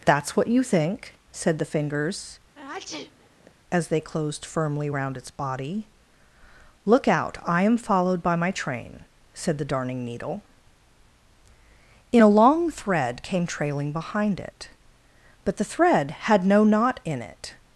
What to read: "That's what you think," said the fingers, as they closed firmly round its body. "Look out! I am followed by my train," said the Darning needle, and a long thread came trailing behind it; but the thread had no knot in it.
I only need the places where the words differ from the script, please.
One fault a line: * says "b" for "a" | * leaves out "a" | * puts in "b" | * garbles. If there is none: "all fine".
* says "in" for "and"